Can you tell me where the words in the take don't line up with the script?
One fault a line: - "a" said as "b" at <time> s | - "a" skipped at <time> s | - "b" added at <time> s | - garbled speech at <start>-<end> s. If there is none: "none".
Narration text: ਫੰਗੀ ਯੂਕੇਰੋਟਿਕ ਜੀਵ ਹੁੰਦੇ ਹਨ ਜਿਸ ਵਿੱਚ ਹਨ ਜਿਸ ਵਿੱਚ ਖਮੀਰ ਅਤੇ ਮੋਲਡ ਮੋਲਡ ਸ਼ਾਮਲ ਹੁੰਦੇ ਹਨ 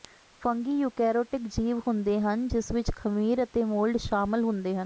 - "ਹਨ ਜਿਸ ਵਿੱਚ" skipped at 2.9 s
- "ਮੋਲਡ" skipped at 4.0 s